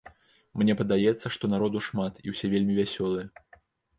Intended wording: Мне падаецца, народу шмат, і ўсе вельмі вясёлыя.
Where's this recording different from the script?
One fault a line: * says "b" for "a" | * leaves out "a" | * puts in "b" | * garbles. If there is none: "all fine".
* puts in "што"